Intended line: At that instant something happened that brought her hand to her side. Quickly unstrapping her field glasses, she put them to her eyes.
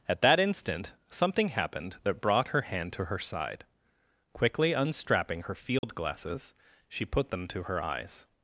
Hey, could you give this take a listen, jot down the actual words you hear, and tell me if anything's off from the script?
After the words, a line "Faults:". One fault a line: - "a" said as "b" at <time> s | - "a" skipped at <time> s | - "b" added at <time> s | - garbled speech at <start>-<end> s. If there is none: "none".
At that instant something happened that brought her hand to her side. Quickly unstrapping her field glasses, she put them to her eyes.
Faults:
none